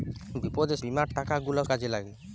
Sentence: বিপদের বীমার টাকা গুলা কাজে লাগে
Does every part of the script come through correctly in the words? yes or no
yes